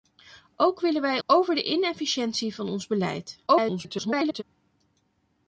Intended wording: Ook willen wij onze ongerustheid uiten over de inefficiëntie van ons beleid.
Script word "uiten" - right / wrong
wrong